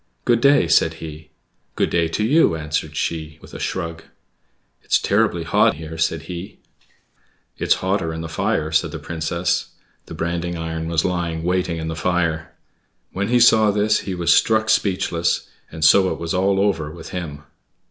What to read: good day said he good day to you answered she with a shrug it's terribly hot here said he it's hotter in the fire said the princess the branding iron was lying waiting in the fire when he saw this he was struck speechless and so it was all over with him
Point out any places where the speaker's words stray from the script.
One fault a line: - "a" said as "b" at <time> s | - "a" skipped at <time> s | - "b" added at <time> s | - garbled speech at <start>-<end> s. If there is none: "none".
none